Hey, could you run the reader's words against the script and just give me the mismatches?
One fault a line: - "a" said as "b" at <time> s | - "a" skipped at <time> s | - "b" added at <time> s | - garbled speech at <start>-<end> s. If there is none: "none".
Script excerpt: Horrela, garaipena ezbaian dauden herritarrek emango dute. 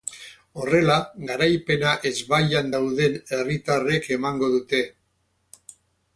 none